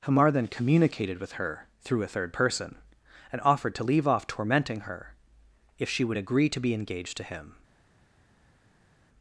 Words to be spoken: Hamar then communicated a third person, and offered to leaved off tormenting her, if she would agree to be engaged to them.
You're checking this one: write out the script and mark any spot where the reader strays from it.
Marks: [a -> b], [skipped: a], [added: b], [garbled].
Hamar then communicated [added: with her through] a third person, and offered to [leaved -> leave] off tormenting her, if she would agree to be engaged to [them. -> him]